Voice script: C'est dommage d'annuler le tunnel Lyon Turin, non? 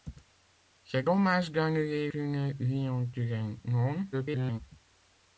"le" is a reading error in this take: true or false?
true